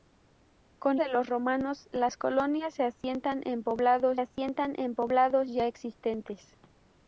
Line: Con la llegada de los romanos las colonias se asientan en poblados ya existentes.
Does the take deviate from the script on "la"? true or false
true